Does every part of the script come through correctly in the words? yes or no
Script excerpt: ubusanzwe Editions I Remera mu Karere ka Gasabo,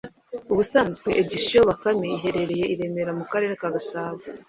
no